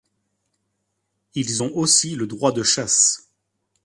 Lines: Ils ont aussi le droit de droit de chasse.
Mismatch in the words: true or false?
true